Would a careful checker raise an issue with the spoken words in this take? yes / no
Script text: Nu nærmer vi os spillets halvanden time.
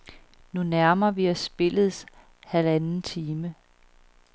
no